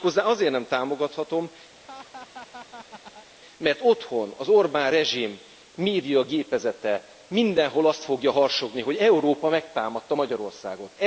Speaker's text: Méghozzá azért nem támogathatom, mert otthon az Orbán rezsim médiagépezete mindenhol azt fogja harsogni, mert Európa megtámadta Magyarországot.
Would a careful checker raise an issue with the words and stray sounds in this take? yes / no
yes